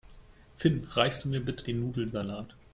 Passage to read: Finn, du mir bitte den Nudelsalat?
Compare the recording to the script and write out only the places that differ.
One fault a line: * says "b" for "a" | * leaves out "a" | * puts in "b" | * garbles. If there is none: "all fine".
* puts in "reichst"